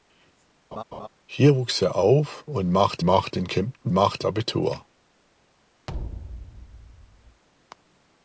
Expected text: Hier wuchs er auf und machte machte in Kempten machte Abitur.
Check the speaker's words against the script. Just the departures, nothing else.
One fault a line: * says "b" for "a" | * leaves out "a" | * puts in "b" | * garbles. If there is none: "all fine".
all fine